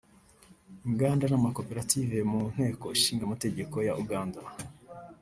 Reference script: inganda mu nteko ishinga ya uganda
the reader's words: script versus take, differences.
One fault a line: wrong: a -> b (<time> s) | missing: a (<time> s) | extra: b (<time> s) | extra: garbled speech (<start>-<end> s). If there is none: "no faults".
extra: n'amakoperative (1.3 s)
extra: amategeko (3.2 s)